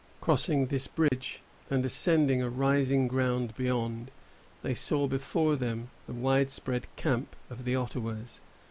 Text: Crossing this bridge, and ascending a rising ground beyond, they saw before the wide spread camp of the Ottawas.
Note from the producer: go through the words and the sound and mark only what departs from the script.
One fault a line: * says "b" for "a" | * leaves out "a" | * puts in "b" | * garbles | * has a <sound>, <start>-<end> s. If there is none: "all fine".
* has a dropout, 1.1-1.1 s
* puts in "them"